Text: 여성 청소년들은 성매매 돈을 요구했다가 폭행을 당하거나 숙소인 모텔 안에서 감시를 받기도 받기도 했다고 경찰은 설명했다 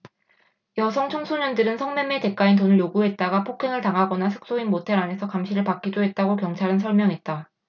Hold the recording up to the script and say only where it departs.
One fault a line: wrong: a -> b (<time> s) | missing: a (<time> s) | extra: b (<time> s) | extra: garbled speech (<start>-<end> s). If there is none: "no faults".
extra: 대가인 (2.2 s)
missing: 받기도 (6.0 s)